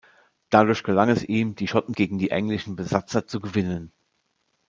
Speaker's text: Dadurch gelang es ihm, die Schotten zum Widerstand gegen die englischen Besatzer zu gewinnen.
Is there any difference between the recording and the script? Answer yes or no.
yes